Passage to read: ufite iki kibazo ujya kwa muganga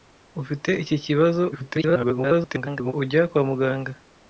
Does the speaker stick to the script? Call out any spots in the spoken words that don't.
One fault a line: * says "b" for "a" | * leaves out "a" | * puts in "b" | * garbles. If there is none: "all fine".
* garbles